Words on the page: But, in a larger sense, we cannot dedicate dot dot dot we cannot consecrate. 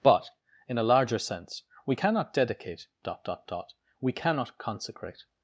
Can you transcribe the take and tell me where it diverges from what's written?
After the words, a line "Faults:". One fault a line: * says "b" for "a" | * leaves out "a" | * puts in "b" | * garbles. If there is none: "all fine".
But, in a larger sense, we cannot dedicate dot dot dot we cannot consecrate.
Faults:
all fine